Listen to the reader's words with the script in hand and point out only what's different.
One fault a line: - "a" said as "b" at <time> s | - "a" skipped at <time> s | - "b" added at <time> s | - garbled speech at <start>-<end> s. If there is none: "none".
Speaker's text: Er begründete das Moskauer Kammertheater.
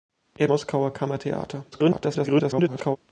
- "begründete das" skipped at 0.5 s
- garbled speech at 1.7-3.0 s